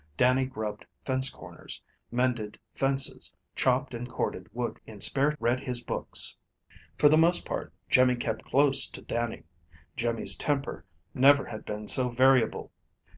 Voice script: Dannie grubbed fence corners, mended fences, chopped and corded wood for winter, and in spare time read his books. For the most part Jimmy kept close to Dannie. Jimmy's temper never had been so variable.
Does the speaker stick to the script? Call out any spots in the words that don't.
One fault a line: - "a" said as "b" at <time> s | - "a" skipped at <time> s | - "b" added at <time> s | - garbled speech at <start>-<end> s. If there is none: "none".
- "for winter and" skipped at 4.8 s
- "time" skipped at 5.3 s